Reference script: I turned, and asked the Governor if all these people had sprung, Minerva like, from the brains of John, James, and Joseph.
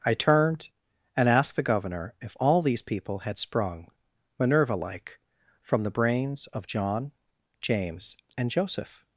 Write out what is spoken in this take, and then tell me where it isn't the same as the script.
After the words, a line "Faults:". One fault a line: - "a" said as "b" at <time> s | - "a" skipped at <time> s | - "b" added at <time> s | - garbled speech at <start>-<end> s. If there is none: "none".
I turned, and asked the Governor if all these people had sprung, Minerva like, from the brains of John, James, and Joseph.
Faults:
none